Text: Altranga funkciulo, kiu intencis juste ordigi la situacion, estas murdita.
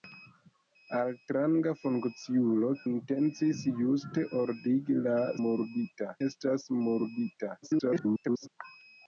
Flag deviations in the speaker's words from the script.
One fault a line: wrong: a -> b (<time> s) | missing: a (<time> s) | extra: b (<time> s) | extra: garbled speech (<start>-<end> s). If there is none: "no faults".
missing: kiu (2.7 s)
wrong: situacion -> murdita (5.4 s)
extra: garbled speech (7.6-8.5 s)